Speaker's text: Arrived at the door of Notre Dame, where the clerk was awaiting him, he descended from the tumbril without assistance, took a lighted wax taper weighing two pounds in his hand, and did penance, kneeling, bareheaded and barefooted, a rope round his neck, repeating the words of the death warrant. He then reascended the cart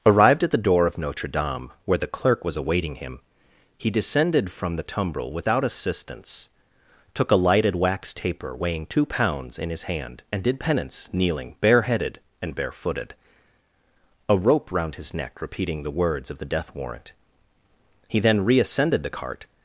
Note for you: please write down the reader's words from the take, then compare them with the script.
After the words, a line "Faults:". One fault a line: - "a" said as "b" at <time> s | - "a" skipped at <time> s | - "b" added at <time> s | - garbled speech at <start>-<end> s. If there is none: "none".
Arrived at the door of Notre Dame, where the clerk was awaiting him, he descended from the tumbril without assistance, took a lighted wax taper weighing two pounds in his hand, and did penance, kneeling, bareheaded and barefooted, a rope round his neck, repeating the words of the death warrant. He then reascended the cart
Faults:
none